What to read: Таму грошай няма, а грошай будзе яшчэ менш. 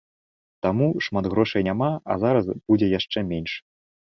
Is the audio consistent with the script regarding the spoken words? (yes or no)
no